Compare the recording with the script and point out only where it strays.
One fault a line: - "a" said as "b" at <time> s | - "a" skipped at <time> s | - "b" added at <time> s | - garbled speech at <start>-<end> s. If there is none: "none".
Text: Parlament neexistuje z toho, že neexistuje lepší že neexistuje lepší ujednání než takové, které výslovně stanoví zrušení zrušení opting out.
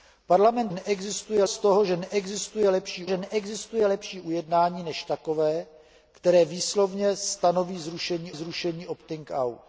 none